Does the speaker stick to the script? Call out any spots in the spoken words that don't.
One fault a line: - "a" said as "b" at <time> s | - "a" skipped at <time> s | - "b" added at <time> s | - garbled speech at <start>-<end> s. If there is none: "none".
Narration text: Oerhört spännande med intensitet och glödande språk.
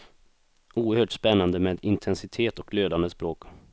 none